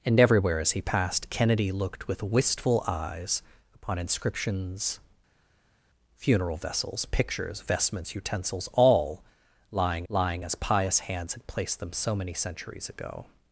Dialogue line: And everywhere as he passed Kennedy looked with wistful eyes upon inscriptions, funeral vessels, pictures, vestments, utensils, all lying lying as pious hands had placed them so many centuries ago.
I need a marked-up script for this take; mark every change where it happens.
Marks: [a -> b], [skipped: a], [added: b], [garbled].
And everywhere as he passed Kennedy looked with wistful eyes upon inscriptions, funeral vessels, pictures, vestments, utensils, all lying lying as pious hands had placed them so many centuries ago.